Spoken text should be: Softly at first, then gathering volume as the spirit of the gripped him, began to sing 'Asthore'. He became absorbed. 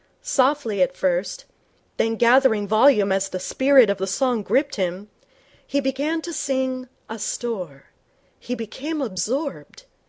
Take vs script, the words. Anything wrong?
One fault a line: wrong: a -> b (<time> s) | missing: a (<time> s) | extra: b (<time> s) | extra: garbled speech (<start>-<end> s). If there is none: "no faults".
extra: song (4.1 s)
extra: he (5.7 s)